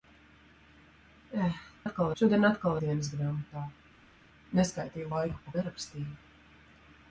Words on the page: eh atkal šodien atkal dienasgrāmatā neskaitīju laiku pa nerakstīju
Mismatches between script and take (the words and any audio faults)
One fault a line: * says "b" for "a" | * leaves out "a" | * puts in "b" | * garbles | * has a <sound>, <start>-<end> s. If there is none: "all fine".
all fine